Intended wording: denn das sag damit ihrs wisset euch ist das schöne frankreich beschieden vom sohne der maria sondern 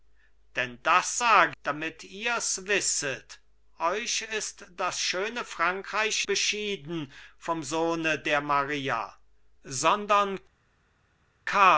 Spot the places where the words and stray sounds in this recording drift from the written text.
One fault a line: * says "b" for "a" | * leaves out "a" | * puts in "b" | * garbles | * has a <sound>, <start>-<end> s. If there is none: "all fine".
all fine